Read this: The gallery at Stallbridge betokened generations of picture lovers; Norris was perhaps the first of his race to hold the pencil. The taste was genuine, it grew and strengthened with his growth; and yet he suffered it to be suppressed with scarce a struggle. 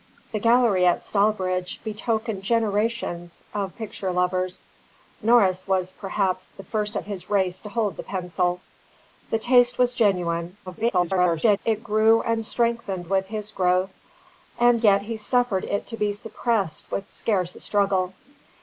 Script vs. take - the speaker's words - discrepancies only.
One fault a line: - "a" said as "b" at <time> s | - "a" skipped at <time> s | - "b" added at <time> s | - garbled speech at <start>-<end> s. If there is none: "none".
- garbled speech at 10.7-11.6 s